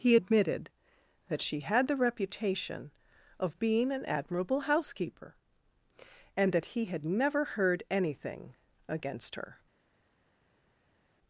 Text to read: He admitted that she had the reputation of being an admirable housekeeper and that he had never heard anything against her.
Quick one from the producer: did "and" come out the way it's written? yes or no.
yes